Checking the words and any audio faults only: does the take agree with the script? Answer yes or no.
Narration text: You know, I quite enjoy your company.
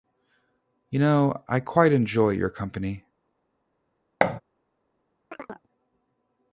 no